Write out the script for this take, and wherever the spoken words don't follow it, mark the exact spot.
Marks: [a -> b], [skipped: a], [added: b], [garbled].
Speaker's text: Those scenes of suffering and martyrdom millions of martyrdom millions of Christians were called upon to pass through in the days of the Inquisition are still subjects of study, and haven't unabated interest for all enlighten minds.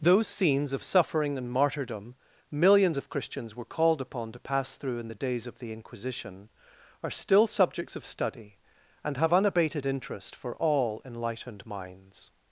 Those scenes of suffering and martyrdom millions of [skipped: martyrdom millions of] Christians were called upon to pass through in the days of the Inquisition are still subjects of study, and [haven't -> have] unabated interest for all [enlighten -> enlightened] minds.